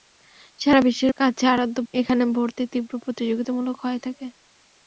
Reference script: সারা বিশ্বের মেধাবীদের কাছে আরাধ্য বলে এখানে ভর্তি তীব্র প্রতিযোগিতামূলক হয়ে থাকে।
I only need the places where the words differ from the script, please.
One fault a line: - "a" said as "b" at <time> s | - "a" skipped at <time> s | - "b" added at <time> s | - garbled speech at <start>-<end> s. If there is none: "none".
- "মেধাবীদের" skipped at 1.1 s
- "বলে" skipped at 1.8 s